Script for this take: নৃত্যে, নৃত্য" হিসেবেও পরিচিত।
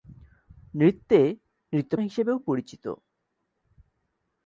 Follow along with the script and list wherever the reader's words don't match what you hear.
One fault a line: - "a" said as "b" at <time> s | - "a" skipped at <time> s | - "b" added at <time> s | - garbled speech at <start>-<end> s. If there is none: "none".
none